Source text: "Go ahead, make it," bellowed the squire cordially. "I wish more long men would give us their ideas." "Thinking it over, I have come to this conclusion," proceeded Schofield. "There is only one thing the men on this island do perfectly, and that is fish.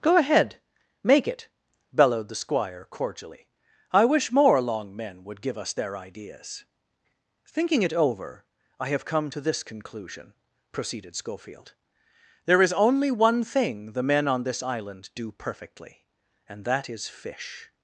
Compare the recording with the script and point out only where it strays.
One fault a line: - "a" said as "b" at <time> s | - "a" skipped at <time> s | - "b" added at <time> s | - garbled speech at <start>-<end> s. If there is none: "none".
none